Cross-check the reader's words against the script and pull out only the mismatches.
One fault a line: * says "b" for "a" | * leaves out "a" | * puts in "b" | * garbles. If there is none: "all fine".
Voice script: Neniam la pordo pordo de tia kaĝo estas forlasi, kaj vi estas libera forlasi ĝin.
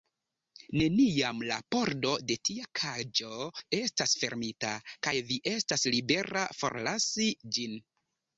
* leaves out "pordo"
* says "fermita" for "forlasi"